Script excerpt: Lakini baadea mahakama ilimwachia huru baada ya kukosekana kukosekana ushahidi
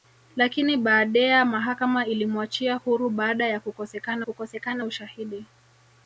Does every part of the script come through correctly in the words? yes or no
yes